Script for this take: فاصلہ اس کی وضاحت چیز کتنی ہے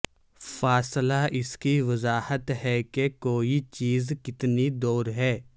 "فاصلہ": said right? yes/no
yes